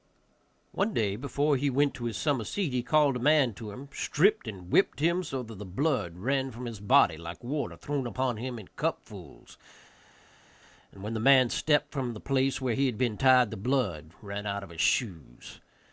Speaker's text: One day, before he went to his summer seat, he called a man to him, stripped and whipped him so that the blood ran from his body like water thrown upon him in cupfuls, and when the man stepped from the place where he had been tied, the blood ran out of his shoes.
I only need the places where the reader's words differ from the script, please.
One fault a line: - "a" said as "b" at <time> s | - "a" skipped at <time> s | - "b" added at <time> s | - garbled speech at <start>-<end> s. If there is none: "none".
none